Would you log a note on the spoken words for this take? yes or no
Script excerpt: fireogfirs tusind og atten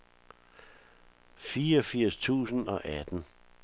no